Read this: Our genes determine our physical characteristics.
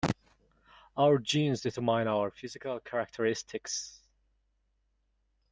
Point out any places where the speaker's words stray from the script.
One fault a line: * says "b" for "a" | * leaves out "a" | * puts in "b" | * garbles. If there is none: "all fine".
all fine